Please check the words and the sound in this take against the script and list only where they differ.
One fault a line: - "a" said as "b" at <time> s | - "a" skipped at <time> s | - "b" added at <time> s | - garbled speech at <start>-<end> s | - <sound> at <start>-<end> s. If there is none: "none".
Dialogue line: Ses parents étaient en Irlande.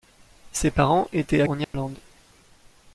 - dropout at 1.6-1.7 s